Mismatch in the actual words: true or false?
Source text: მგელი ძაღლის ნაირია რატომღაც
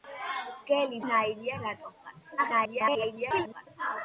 true